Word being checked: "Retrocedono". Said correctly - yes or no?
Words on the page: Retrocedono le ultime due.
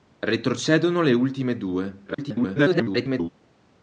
yes